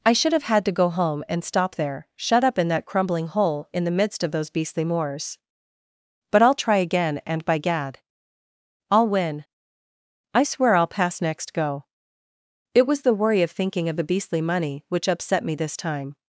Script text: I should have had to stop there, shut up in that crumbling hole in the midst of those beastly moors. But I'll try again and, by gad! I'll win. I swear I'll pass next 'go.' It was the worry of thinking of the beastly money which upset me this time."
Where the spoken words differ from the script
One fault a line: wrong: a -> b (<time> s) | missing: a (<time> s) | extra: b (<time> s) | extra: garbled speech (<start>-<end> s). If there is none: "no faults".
extra: go home and (0.7 s)